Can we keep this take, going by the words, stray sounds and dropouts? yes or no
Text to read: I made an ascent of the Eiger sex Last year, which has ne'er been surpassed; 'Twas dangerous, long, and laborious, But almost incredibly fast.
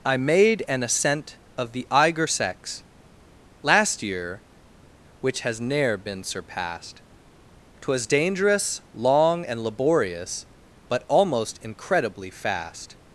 yes